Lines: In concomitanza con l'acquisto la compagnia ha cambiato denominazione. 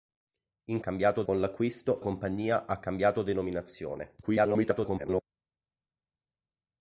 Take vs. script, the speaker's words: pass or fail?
fail